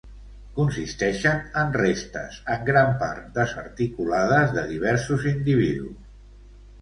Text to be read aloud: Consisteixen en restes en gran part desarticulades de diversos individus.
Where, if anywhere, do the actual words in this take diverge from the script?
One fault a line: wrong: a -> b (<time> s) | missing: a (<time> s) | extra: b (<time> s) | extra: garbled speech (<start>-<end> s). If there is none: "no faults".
no faults